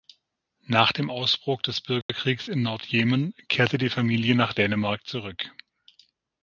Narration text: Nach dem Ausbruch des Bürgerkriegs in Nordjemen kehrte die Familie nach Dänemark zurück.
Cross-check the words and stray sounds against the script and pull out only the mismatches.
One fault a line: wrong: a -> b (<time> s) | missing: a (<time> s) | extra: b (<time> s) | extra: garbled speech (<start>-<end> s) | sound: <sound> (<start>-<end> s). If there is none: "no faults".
sound: dropout (2.0-2.1 s)